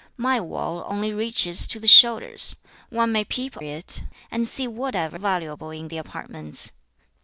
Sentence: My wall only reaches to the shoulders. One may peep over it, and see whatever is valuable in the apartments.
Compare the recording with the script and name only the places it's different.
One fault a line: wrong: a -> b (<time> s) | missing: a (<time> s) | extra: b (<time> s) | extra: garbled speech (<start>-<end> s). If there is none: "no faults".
missing: over (3.5 s)
missing: is (5.2 s)